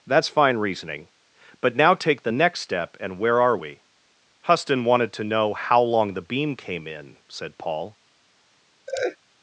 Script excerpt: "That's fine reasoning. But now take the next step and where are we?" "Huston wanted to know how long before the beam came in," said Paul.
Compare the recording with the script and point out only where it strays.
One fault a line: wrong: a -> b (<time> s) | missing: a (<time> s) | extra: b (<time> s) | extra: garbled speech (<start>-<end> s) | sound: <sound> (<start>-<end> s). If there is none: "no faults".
missing: before (6.1 s)
sound: laugh (8.9-9.2 s)